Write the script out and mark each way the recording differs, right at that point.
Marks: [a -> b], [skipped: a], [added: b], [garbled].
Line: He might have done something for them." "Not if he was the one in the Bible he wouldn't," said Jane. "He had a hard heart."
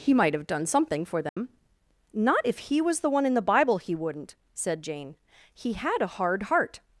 He might have done something for them." "Not if he was the one in the Bible he wouldn't," said Jane. "He had a hard heart."